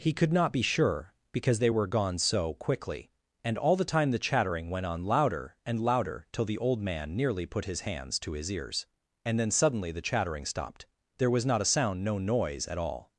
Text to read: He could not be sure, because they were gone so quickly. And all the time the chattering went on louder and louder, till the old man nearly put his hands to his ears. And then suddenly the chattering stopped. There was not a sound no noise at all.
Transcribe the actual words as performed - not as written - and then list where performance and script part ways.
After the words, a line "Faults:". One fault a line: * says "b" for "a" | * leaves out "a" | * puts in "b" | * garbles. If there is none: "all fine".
He could not be sure, because they were gone so quickly. And all the time the chattering went on louder and louder, till the old man nearly put his hands to his ears. And then suddenly the chattering stopped. There was not a sound no noise at all.
Faults:
all fine